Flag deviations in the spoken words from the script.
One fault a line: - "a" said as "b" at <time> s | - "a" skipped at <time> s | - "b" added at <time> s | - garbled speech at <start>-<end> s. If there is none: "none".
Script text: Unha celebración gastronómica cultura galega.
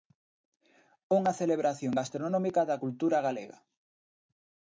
- "da" added at 2.7 s